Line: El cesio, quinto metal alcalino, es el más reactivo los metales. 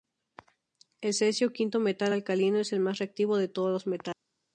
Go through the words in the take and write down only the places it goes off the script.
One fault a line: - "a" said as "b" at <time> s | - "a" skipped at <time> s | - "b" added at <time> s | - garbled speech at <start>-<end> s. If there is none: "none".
- "de todos" added at 3.4 s